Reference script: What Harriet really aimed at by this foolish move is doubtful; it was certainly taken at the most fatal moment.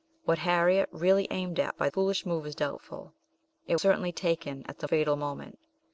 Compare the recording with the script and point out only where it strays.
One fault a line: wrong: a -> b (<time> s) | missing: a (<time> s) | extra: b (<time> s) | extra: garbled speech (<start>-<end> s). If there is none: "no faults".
missing: this (1.9 s)
missing: was (3.8 s)
missing: most (4.9 s)